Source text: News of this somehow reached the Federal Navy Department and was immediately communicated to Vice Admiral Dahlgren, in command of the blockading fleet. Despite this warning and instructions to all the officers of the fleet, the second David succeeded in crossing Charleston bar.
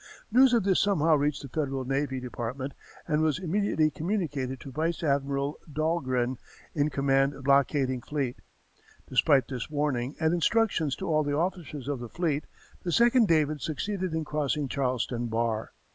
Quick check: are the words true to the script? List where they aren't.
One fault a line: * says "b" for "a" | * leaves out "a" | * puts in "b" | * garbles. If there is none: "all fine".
* leaves out "the"